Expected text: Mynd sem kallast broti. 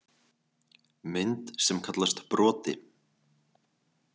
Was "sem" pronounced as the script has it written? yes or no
yes